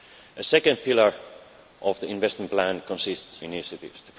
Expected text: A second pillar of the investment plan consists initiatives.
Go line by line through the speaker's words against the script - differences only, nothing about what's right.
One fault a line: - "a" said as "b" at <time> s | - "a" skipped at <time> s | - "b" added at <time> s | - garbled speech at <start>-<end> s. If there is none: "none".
none